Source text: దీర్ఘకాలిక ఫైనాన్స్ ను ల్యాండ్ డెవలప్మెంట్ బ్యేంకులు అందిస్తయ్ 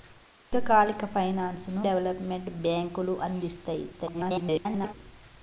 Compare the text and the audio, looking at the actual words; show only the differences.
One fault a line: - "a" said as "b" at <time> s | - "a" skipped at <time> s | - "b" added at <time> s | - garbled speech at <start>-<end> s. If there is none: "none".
- "ల్యాండ్" skipped at 1.8 s
- garbled speech at 3.9-4.9 s